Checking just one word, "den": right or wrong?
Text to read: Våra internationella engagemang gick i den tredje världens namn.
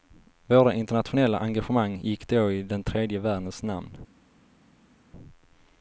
right